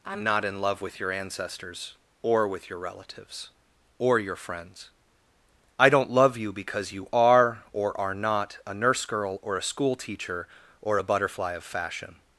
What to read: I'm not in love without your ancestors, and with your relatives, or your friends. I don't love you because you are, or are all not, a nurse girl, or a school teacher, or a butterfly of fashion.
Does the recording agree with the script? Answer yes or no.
no